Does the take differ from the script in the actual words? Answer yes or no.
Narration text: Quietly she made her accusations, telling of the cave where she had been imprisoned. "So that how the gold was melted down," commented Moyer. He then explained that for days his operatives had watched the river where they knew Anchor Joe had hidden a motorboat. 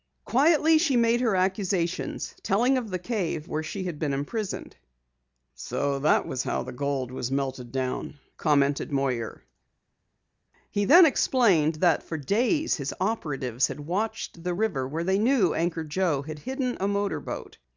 yes